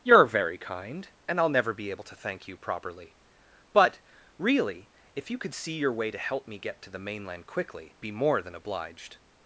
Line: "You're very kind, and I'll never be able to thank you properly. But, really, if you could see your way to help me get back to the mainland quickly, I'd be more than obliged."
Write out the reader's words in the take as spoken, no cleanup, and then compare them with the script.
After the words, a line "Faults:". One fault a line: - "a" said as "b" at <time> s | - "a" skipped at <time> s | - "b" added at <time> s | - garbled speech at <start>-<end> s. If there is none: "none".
"You're very kind, and I'll never be able to thank you properly. But, really, if you could see your way to help me get to the mainland quickly, Be more than obliged."
Faults:
- "back" skipped at 6.8 s
- "I'd" skipped at 8.0 s